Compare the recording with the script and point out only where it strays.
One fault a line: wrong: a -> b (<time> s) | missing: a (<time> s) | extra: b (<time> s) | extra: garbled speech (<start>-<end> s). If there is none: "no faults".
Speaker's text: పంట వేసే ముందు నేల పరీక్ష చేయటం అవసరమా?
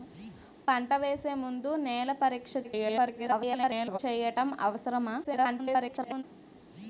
extra: garbled speech (2.6-4.0 s)
extra: garbled speech (5.2-6.2 s)